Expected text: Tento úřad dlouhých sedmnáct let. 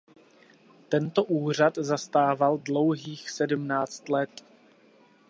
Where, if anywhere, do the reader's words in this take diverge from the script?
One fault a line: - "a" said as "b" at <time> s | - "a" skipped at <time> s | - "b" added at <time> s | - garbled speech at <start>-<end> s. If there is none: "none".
- "zastával" added at 1.8 s